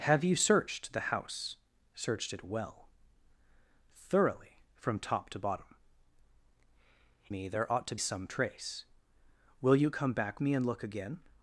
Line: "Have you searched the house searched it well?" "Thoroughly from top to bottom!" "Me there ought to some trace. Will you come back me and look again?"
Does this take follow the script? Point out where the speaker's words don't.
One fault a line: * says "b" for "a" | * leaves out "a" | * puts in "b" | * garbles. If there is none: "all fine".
all fine